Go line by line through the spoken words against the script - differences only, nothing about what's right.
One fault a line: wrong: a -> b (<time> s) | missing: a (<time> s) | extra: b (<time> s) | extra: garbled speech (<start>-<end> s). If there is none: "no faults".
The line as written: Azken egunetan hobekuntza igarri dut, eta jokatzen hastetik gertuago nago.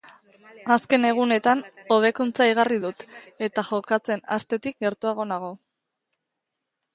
no faults